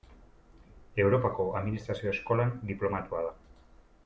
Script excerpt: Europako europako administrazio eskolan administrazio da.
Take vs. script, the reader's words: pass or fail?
fail